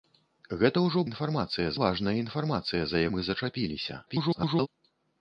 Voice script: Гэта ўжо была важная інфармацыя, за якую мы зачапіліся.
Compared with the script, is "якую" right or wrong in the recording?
wrong